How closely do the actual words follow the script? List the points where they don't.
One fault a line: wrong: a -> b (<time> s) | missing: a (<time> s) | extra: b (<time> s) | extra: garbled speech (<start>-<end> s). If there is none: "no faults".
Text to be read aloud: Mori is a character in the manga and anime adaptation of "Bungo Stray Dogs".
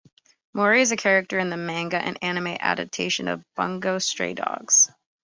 no faults